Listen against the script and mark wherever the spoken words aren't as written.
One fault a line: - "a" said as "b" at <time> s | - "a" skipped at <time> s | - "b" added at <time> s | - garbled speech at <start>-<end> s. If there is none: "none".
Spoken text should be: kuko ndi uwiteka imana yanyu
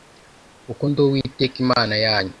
none